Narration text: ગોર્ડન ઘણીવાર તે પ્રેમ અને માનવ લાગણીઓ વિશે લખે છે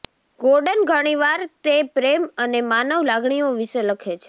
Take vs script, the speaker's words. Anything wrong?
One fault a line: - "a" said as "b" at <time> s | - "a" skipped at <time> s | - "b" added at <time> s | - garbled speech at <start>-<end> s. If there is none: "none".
none